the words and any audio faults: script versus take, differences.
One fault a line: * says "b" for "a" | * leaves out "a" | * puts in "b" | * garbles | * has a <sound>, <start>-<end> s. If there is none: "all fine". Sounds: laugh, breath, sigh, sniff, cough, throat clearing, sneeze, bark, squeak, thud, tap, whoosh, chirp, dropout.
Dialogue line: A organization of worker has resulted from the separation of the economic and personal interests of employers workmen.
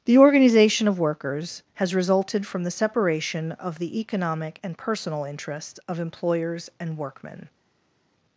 * says "The" for "A"
* says "workers" for "worker"
* puts in "and"